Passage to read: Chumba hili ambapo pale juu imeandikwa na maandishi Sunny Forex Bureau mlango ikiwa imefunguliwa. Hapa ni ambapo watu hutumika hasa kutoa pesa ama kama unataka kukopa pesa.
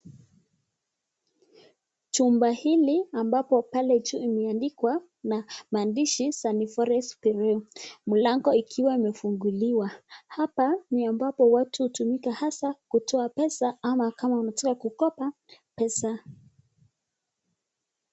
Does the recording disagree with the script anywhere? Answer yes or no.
no